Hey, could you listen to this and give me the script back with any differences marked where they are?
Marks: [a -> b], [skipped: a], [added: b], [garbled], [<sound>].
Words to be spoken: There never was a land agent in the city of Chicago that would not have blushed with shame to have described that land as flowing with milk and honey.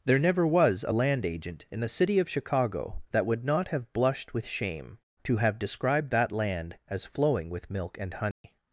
There never was a land agent in the city of Chicago that would not have blushed with shame to have described that land as flowing with milk and honey. [dropout]